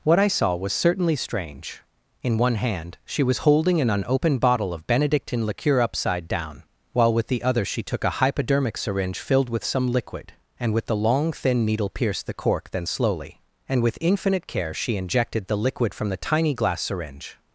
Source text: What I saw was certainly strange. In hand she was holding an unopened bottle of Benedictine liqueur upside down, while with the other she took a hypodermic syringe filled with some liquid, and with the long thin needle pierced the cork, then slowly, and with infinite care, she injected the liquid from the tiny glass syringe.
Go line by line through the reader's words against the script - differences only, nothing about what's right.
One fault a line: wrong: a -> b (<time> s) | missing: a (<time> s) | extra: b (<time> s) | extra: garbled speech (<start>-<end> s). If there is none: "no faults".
extra: one (2.4 s)